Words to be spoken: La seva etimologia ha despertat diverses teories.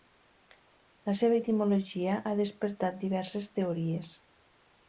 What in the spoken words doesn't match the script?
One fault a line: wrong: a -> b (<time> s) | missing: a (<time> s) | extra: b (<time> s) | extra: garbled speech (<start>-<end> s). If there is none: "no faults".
no faults